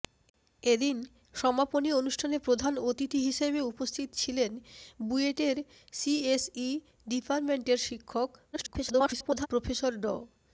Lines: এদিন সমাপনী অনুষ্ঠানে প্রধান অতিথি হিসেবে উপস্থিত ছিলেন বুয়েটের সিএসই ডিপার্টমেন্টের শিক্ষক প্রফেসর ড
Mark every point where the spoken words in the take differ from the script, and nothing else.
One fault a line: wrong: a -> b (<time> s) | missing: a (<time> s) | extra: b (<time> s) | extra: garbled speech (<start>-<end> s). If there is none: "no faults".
extra: garbled speech (8.5-9.5 s)